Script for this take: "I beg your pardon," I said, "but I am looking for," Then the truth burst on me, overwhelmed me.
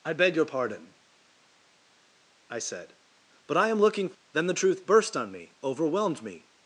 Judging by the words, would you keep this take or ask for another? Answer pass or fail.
fail